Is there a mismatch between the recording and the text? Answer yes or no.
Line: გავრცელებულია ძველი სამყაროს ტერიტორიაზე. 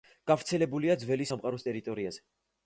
no